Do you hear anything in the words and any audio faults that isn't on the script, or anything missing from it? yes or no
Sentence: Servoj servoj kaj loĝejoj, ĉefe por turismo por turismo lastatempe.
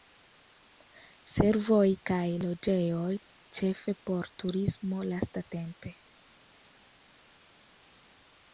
yes